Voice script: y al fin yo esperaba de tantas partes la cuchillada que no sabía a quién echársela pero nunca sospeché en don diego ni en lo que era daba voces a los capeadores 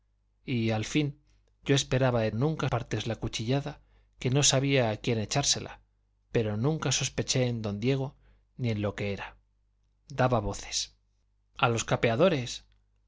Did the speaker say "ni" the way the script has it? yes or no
yes